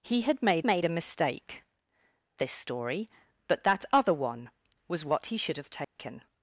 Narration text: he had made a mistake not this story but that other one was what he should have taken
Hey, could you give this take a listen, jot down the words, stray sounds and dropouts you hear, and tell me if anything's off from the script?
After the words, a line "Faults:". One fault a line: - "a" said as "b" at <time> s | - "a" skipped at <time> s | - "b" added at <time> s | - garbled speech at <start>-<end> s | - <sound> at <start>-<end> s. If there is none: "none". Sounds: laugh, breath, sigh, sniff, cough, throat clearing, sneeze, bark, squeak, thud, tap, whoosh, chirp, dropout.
he had made made a mistake this story but that other one was what he should have taken
Faults:
- "made" added at 0.6 s
- "not" skipped at 1.6 s
- dropout at 5.8-6.0 s